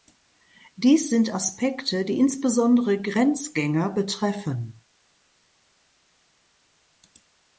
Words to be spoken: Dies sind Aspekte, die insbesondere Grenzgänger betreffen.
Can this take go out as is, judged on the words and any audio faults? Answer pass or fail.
pass